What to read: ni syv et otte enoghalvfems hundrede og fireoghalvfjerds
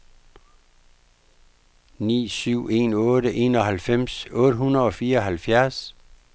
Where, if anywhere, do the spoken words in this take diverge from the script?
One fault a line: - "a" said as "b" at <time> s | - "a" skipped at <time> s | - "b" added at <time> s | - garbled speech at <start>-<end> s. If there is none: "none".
- "et" said as "en" at 2.8 s
- "otte" added at 4.4 s